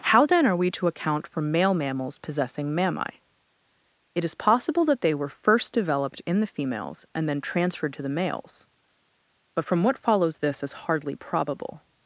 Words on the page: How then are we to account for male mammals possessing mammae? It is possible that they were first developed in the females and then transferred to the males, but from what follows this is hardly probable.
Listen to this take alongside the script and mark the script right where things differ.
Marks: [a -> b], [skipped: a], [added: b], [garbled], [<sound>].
How then are we to account for male mammals possessing mammae? It is possible that they were first developed in the females and then transferred to the males, but from what follows this is hardly probable.